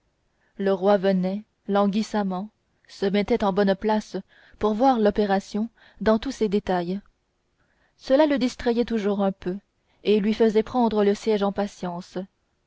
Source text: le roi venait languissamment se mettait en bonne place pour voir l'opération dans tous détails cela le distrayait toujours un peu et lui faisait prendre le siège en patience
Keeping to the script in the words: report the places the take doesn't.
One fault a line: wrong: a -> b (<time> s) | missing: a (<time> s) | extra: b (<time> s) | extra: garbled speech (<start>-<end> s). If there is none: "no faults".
extra: ses (6.3 s)